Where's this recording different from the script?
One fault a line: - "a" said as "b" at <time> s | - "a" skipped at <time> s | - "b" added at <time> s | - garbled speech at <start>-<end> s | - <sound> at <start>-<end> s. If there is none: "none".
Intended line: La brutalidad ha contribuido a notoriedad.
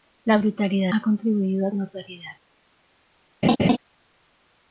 - laugh at 3.4-3.8 s